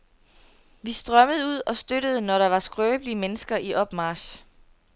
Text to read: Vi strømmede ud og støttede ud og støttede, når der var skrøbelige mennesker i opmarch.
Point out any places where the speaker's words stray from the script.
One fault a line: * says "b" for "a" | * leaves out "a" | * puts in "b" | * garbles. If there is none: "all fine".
* leaves out "ud og støttede"